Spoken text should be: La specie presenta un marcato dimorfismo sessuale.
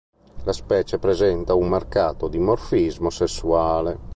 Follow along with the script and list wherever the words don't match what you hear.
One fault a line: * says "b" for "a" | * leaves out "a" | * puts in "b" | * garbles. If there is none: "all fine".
all fine